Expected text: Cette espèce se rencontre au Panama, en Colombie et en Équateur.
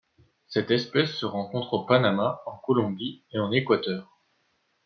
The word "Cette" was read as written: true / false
true